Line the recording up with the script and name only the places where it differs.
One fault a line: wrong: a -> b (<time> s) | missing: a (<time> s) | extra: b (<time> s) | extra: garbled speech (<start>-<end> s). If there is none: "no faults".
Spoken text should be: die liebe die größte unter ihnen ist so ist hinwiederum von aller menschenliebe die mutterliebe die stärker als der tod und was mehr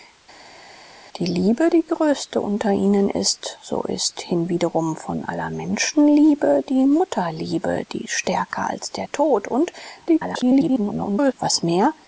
extra: garbled speech (10.1-11.3 s)